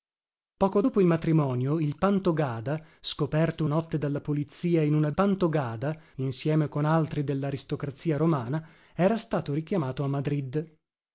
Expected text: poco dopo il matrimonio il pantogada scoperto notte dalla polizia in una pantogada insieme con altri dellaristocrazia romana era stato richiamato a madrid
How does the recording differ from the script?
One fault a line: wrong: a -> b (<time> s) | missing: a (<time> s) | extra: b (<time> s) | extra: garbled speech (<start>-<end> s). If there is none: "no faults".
no faults